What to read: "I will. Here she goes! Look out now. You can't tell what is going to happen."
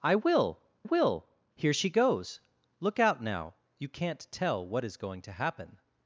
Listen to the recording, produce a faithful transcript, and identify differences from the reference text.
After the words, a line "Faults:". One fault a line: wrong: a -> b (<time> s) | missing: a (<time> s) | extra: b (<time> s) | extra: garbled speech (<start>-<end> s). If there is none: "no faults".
"I will will. Here she goes! Look out now. You can't tell what is going to happen."
Faults:
extra: will (0.8 s)